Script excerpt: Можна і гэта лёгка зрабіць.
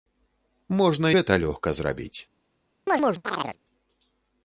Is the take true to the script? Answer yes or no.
no